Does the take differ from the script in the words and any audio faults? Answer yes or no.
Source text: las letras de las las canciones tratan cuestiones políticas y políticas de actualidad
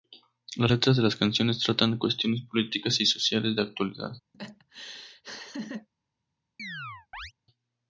yes